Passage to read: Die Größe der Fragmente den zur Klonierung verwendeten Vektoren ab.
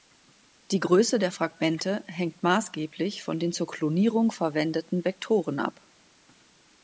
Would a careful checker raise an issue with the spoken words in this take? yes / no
yes